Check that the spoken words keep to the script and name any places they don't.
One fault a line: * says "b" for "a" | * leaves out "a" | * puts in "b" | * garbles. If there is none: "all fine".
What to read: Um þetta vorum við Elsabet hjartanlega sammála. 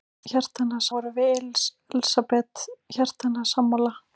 * says "hjartanlega" for "þetta"